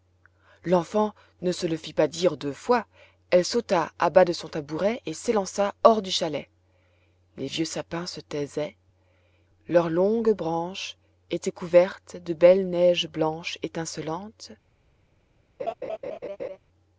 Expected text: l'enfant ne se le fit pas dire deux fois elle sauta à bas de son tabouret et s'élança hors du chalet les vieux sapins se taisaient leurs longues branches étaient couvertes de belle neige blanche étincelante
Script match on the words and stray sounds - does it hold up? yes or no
no